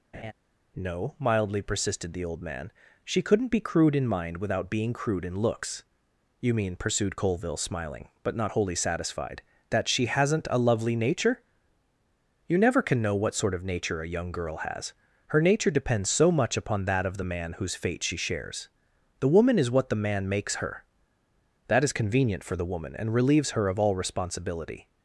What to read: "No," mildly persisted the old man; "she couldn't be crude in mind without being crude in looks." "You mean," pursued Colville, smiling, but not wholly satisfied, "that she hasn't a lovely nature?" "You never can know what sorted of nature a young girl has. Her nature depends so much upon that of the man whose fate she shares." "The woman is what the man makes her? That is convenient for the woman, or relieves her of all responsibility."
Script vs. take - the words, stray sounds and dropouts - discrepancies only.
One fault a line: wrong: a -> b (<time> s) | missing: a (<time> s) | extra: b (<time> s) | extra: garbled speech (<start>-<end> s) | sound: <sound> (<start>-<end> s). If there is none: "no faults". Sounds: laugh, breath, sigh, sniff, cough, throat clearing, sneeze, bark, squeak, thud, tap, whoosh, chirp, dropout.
sound: laugh (0.1-0.3 s)
wrong: sorted -> sort (13.3 s)
wrong: or -> and (22.9 s)